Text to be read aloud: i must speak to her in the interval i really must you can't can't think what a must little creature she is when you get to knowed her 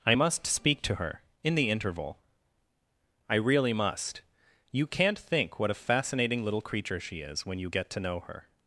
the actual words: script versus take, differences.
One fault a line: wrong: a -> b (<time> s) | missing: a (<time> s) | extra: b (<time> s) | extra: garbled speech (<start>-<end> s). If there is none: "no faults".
missing: can't (5.2 s)
wrong: must -> fascinating (5.7 s)
wrong: knowed -> know (8.0 s)